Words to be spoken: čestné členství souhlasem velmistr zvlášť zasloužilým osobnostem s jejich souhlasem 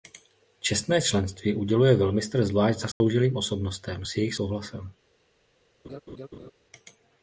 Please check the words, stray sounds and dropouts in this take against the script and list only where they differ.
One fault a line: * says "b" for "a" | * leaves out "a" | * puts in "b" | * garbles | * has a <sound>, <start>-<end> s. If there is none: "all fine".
* says "uděluje" for "souhlasem"
* has a dropout, 2.9-3.0 s
* has a laugh, 5.8-6.5 s